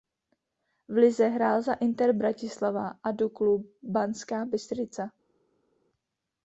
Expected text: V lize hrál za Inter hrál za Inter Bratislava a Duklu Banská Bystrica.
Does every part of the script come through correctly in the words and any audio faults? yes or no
no